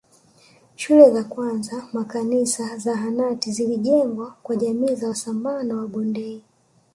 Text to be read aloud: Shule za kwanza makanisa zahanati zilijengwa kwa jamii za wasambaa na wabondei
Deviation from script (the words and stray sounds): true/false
false